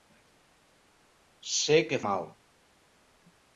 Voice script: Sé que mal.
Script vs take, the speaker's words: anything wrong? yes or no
no